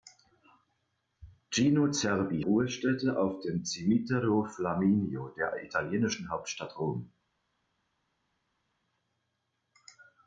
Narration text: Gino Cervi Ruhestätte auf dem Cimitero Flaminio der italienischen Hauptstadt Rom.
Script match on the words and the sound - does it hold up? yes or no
yes